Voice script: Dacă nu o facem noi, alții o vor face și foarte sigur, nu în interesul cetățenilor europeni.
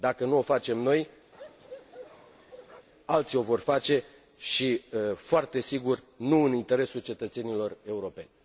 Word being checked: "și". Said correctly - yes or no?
yes